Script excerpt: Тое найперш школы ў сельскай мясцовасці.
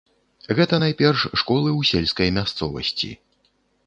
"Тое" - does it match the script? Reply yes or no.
no